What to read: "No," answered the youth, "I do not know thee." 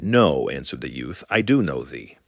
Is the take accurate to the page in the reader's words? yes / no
no